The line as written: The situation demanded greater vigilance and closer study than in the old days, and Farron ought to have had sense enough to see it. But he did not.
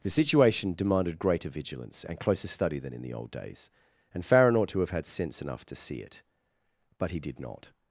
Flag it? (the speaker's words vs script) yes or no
no